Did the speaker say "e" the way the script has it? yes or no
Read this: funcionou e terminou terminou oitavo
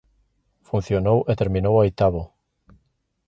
yes